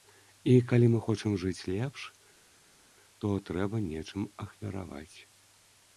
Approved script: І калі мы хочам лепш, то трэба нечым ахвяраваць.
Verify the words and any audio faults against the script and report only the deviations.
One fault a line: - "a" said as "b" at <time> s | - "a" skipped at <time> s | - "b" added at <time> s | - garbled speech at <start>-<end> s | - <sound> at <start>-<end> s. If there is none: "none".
- "жыць" added at 1.4 s